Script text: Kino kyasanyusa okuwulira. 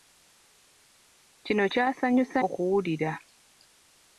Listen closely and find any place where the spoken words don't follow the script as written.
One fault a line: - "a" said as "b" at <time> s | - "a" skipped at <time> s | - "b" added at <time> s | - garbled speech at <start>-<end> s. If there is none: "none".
none